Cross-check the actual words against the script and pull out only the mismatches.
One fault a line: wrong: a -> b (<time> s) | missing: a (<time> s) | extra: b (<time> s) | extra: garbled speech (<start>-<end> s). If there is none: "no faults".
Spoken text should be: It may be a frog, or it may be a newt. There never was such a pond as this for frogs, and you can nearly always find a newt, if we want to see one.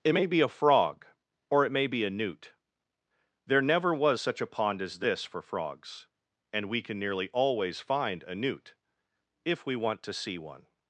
wrong: you -> we (6.7 s)